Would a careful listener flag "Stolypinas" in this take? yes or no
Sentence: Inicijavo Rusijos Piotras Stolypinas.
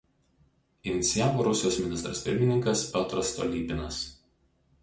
no